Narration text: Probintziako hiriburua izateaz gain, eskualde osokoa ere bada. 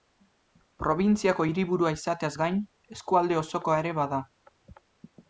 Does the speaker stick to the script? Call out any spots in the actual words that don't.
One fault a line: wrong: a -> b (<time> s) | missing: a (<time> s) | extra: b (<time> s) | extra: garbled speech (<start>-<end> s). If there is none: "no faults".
no faults